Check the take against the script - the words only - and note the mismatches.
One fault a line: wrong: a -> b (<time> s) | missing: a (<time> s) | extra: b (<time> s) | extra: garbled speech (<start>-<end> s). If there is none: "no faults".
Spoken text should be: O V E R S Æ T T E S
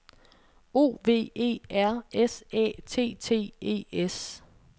no faults